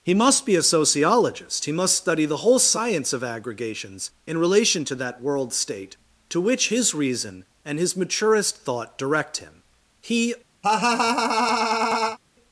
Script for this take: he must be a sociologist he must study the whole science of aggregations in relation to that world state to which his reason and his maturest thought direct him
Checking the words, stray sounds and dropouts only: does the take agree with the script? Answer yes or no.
no